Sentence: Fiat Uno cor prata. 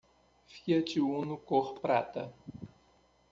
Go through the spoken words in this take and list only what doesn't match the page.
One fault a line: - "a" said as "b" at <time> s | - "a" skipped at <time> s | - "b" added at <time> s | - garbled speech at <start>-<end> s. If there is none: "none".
none